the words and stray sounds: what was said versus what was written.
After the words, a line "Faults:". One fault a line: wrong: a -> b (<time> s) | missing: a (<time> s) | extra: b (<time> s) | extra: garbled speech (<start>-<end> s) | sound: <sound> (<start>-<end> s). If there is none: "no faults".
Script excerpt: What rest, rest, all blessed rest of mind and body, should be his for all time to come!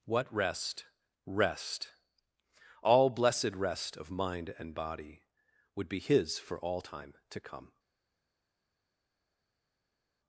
What rest, rest, all blessed rest of mind and body, would be his for all time to come!
Faults:
wrong: should -> would (5.8 s)